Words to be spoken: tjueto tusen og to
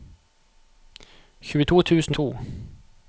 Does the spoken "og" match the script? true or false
false